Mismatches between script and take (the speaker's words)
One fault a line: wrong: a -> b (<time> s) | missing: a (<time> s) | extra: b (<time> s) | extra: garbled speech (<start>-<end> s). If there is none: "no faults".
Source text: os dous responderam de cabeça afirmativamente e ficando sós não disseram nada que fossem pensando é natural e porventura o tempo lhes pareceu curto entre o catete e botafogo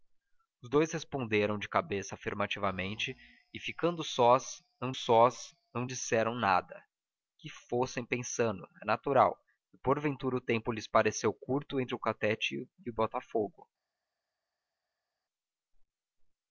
extra: sós não (4.9 s)